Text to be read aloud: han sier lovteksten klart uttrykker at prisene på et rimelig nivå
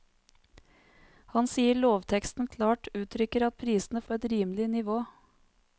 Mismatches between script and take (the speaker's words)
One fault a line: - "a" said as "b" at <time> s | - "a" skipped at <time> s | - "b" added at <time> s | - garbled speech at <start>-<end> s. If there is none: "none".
none